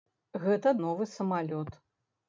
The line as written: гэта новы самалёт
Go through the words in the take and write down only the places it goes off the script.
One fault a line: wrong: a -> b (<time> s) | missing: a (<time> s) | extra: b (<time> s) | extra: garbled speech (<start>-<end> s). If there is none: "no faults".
no faults